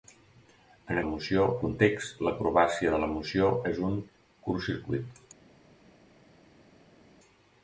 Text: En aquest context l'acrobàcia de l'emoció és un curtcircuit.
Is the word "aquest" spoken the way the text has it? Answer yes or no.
no